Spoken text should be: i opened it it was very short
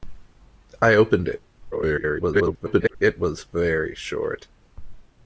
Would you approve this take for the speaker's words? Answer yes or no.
no